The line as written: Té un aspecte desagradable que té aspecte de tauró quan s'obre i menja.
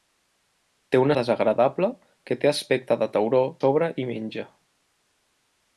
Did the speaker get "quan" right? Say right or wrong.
wrong